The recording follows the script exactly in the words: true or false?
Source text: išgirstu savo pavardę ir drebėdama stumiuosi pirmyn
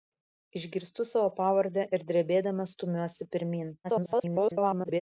false